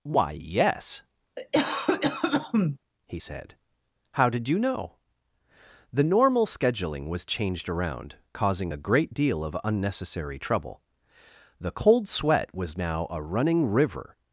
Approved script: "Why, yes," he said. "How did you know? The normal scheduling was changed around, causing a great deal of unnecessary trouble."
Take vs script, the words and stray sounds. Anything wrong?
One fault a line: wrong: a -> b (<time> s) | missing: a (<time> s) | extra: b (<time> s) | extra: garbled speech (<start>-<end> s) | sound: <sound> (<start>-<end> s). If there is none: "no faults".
sound: cough (1.4-2.8 s)
extra: The cold sweat was now a running river (11.6 s)